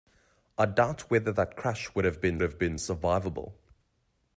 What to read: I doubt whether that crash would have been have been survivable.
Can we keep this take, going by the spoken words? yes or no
yes